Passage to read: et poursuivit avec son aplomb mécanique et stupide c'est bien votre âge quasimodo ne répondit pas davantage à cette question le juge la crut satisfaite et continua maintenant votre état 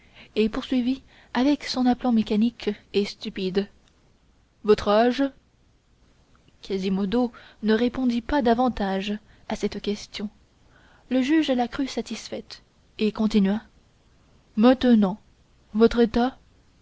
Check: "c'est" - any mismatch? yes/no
yes